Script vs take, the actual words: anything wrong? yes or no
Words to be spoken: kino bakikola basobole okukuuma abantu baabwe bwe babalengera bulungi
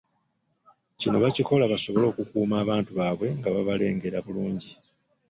yes